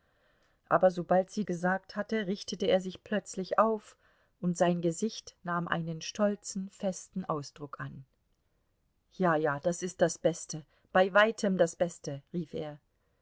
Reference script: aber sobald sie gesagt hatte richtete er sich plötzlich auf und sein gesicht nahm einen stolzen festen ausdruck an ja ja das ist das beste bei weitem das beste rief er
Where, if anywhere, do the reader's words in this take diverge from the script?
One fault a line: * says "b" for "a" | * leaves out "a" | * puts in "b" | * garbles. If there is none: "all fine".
all fine